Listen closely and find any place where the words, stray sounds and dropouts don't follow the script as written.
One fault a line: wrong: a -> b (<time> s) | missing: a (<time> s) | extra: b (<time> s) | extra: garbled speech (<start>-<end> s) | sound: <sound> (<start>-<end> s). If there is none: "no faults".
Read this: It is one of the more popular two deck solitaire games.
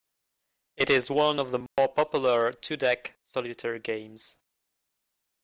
sound: dropout (1.7-1.8 s)